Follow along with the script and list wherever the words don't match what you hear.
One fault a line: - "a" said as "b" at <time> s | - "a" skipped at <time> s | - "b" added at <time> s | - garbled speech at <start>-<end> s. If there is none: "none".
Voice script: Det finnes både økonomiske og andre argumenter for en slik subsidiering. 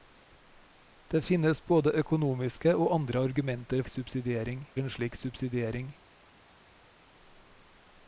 - "for" said as "subsidiering" at 3.9 s